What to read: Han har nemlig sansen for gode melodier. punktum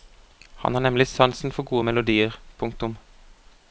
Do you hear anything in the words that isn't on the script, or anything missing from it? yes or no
no